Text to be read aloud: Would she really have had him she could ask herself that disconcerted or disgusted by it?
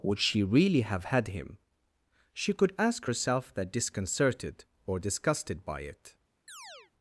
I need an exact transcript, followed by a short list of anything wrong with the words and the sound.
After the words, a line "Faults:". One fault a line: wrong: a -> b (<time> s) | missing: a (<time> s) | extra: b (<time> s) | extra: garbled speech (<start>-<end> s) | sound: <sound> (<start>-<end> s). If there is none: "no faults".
Would she really have had him she could ask herself that disconcerted or disgusted by it?
Faults:
sound: chirp (6.5-6.9 s)